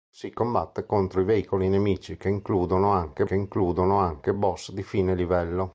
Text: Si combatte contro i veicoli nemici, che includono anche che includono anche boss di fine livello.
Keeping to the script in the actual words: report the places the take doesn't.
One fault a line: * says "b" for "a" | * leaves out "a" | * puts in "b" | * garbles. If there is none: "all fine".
all fine